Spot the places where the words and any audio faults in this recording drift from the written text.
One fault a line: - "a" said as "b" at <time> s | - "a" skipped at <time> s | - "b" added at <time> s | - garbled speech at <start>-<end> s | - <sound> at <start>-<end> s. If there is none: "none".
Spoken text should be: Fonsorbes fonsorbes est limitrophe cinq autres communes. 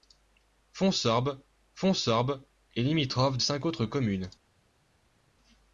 none